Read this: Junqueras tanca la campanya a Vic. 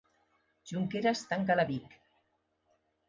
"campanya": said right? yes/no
no